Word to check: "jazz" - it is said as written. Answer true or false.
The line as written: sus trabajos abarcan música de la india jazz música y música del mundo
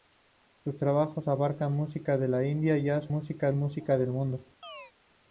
true